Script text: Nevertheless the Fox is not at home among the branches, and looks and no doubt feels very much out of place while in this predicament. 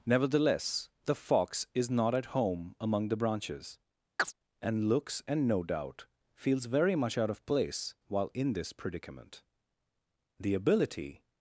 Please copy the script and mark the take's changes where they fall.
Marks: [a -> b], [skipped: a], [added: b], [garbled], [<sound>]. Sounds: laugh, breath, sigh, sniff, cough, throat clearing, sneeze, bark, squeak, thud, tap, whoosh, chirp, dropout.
Nevertheless the Fox is not at home among the branches, [chirp] and looks and no doubt feels very much out of place while in this predicament. [added: The ability]